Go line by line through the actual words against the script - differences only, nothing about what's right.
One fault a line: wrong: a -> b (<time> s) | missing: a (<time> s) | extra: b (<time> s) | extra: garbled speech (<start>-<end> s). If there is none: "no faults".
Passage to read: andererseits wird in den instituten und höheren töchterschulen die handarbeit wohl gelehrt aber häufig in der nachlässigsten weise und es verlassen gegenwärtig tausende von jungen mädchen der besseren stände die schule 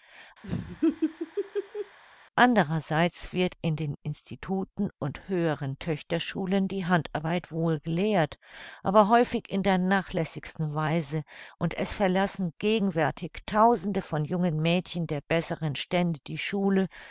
no faults